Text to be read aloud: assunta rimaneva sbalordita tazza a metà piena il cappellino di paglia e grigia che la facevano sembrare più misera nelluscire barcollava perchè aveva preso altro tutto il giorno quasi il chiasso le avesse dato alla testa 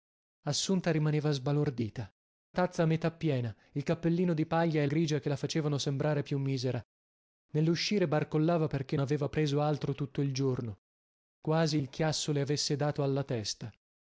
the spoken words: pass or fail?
pass